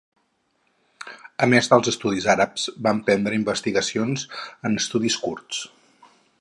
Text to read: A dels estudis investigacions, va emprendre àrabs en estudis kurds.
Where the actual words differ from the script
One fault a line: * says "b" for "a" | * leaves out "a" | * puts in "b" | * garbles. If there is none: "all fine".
* puts in "més"
* says "àrabs" for "investigacions"
* says "investigacions" for "àrabs"